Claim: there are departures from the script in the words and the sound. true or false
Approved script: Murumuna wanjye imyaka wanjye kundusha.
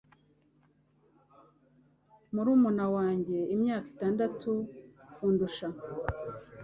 true